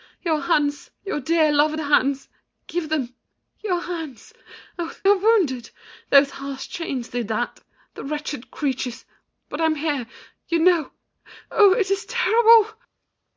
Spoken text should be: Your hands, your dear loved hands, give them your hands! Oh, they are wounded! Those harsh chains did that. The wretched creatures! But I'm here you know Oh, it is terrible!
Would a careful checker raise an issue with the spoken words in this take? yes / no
yes